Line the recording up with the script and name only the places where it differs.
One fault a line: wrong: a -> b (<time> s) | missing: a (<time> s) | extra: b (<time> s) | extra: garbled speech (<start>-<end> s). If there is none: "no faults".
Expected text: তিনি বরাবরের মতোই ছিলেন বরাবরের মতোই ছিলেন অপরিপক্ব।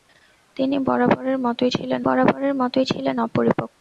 no faults